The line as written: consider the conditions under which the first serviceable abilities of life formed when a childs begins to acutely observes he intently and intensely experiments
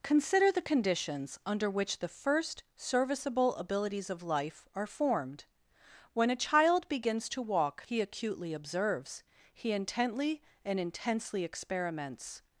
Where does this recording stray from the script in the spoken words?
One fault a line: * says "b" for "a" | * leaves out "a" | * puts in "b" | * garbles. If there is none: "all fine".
* puts in "are"
* says "child" for "childs"
* puts in "walk he"